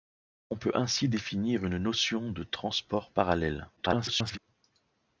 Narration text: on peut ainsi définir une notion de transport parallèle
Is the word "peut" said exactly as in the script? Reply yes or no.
yes